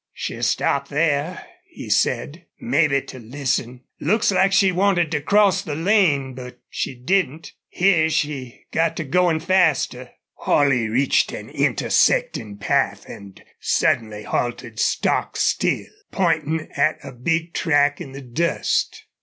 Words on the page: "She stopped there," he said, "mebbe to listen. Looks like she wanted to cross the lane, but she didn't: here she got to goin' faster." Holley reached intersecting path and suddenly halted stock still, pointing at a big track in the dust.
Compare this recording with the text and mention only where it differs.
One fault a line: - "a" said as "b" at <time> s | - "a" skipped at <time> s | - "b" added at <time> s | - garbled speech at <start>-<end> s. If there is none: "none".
- "an" added at 11.3 s